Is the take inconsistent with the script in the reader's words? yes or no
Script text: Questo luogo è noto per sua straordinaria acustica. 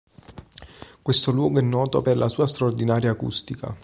yes